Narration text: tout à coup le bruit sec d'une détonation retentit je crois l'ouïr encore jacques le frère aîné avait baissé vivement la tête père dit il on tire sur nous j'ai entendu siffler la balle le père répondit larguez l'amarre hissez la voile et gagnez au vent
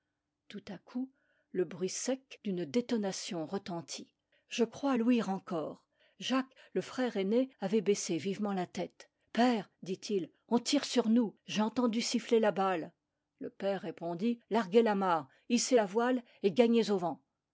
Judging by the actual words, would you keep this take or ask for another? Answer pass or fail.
pass